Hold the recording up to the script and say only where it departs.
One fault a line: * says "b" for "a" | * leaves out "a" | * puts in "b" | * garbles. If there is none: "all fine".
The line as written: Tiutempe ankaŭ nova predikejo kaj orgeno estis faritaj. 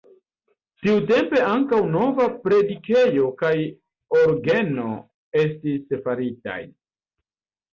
all fine